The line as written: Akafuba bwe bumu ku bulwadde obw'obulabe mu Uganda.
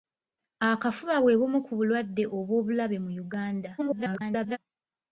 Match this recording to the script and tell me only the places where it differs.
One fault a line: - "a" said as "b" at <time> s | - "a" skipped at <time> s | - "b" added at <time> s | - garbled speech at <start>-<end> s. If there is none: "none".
- garbled speech at 3.8-4.6 s